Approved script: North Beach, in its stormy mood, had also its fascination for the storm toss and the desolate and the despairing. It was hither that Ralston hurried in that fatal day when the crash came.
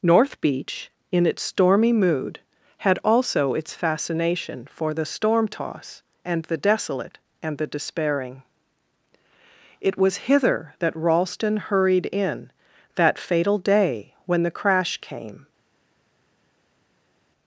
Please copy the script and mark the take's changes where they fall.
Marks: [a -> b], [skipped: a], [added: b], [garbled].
North Beach, in its stormy mood, had also its fascination for the storm toss and the desolate and the despairing. It was hither that Ralston hurried in that fatal day when the crash came.